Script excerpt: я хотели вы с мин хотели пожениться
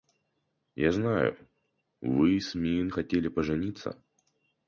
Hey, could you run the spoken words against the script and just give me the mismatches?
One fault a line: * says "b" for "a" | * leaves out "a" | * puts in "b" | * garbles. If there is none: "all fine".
* says "знаю" for "хотели"